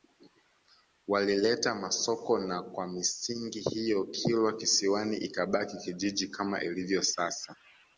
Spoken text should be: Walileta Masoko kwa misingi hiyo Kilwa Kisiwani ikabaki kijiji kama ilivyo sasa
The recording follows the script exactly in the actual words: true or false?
false